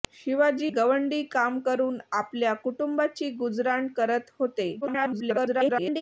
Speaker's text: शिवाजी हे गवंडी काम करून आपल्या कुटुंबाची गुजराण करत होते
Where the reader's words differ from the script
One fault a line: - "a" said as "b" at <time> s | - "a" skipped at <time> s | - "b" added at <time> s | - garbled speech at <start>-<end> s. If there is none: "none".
- "हे" skipped at 0.7 s
- garbled speech at 4.8-6.0 s